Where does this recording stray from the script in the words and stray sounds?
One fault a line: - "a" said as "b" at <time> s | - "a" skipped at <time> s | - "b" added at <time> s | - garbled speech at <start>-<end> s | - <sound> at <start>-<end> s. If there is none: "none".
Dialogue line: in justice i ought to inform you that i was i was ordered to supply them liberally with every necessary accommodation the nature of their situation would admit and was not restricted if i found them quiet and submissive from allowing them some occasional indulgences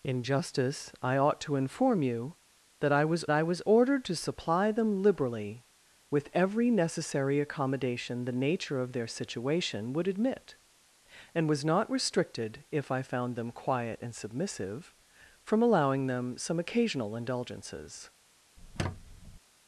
- squeak at 18.6-19.4 s